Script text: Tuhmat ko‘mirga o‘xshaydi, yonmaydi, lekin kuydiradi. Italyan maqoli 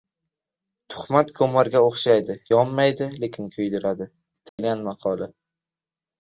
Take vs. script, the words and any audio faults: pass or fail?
fail